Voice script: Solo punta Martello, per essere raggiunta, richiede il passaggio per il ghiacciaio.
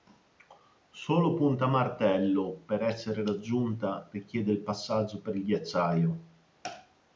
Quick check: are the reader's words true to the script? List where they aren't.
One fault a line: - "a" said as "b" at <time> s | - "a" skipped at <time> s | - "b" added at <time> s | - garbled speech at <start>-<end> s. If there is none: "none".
none